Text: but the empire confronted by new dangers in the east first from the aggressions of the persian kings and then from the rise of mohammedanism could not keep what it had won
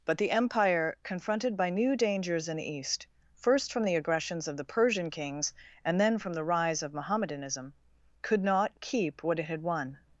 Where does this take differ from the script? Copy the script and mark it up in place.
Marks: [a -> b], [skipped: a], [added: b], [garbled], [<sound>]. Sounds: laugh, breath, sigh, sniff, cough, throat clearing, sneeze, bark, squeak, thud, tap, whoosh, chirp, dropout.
but the empire confronted by new dangers in the east first from the aggressions of the persian kings and then from the rise of mohammedanism could not keep what it had won